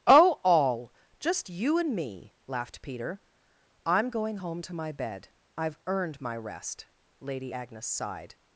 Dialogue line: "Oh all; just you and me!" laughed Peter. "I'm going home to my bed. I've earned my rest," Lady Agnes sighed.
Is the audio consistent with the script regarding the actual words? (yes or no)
yes